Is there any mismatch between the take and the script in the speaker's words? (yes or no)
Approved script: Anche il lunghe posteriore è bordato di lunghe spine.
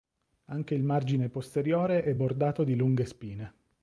yes